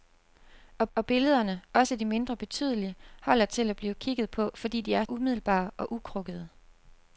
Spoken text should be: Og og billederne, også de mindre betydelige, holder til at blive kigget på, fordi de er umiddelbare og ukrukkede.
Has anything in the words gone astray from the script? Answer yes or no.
no